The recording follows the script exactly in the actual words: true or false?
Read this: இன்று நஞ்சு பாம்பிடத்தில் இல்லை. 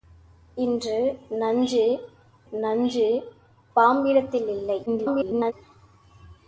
false